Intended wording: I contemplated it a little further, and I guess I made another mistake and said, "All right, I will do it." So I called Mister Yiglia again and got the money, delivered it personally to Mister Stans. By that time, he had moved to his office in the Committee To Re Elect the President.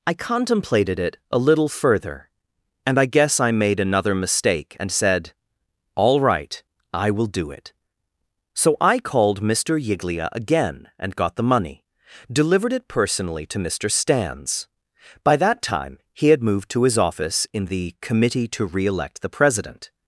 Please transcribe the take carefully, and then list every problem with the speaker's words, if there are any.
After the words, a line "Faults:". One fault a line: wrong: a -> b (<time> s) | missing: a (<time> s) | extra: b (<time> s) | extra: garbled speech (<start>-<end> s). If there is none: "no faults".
I contemplated it a little further, and I guess I made another mistake and said, "All right, I will do it." So I called Mister Yiglia again and got the money, delivered it personally to Mister Stans. By that time, he had moved to his office in the Committee To Re Elect the President.
Faults:
no faults